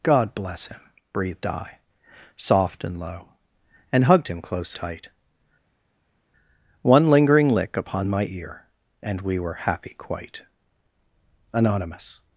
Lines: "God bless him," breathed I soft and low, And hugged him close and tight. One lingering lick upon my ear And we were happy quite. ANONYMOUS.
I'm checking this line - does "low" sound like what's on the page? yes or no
yes